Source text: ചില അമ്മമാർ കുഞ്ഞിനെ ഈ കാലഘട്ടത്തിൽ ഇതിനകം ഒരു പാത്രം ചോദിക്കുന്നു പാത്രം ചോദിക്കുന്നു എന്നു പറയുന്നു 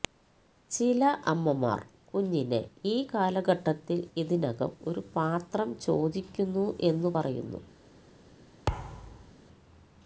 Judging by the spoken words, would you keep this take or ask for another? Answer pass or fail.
fail